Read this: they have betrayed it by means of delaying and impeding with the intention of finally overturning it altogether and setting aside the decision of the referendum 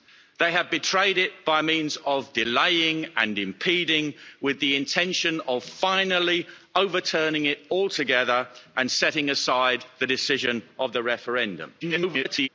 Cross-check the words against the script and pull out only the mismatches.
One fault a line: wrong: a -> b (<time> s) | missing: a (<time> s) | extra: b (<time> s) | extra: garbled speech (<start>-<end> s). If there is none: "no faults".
extra: garbled speech (11.8-12.5 s)